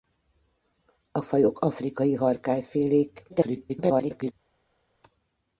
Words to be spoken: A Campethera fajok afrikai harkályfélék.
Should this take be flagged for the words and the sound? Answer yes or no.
yes